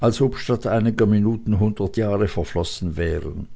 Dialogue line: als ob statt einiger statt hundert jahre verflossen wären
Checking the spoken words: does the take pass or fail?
fail